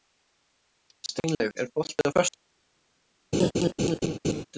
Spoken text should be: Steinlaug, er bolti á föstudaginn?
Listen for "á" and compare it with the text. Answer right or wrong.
right